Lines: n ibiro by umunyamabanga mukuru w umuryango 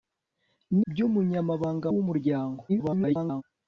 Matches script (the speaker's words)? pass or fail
fail